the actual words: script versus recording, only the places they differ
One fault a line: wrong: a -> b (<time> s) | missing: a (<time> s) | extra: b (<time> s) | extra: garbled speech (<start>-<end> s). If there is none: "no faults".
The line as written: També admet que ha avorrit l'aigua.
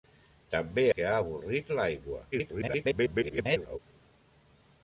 missing: admet (0.8 s)
extra: garbled speech (2.3-3.8 s)